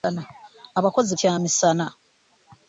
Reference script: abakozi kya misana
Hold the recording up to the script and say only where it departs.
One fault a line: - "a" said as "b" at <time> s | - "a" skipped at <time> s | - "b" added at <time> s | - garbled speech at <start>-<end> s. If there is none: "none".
none